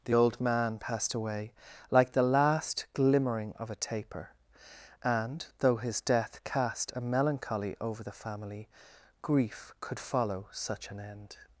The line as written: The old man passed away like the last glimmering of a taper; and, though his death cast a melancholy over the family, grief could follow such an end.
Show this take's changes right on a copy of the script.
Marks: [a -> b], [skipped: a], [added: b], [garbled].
The old man passed away like the last glimmering of a taper; and, though his death cast a melancholy over the family, grief could follow such an end.